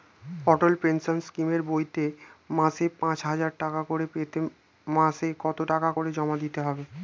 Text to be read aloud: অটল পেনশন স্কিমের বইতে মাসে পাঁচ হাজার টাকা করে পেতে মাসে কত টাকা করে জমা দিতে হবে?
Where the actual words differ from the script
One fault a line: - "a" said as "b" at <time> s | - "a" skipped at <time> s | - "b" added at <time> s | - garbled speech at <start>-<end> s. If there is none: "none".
none